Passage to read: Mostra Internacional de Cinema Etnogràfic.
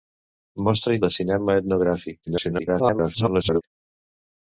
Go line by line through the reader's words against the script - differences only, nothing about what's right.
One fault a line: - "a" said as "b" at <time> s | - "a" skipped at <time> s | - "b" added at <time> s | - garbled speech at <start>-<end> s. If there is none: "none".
- "Internacional" skipped at 0.9 s
- garbled speech at 2.3-3.6 s